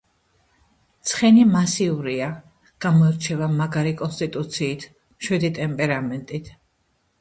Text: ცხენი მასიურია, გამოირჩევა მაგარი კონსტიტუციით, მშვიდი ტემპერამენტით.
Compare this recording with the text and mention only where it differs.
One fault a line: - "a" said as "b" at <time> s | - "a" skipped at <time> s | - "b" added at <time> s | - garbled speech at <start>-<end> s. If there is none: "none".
none